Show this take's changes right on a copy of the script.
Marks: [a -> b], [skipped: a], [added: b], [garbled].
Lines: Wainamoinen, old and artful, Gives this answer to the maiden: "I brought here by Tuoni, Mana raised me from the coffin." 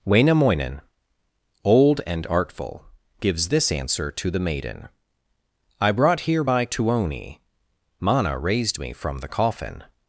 Wainamoinen, old and artful, Gives this answer to the maiden: "I brought here by Tuoni, Mana raised me from the coffin."